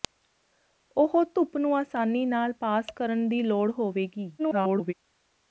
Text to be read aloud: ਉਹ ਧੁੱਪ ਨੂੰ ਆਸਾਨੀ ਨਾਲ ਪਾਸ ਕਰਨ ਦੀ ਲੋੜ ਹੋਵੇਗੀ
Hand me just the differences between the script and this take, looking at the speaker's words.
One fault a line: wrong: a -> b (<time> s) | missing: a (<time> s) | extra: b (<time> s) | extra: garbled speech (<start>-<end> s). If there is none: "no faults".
extra: garbled speech (4.4-4.9 s)